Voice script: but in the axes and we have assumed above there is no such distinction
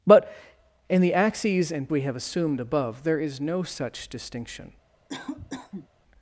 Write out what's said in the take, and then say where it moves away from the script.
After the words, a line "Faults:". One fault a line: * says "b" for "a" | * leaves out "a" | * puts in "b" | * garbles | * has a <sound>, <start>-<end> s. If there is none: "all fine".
but in the axes and we have assumed above there is no such distinction
Faults:
* has a cough, 5.1-5.9 s